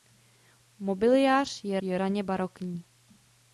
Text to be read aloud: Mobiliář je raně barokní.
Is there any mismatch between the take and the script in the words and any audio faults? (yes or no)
yes